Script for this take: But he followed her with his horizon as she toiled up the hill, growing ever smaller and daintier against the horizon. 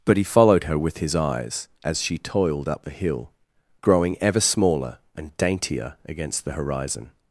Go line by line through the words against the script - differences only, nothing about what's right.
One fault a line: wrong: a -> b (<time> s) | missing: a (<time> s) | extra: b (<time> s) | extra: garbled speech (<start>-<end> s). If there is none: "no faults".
wrong: horizon -> eyes (1.1 s)